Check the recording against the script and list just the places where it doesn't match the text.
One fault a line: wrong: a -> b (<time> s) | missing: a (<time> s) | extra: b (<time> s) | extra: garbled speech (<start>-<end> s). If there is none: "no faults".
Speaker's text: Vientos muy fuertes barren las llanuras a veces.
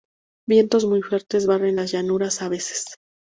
no faults